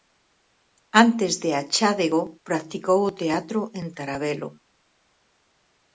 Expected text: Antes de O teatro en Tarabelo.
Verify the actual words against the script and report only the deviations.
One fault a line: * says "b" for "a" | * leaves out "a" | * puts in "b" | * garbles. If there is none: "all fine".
* puts in "Achádego practicou"